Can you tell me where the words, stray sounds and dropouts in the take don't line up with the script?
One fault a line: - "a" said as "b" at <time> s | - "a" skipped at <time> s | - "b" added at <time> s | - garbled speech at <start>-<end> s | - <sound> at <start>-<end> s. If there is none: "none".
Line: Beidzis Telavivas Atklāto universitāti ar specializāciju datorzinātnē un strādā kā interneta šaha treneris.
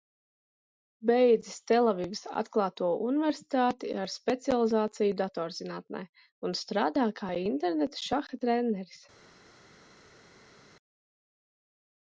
none